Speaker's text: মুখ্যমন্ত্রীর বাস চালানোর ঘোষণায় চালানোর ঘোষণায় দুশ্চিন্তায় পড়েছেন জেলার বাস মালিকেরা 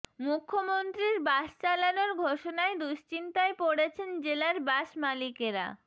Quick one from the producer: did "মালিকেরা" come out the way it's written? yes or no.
yes